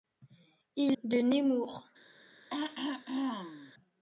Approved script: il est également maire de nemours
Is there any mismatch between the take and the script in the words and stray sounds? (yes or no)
yes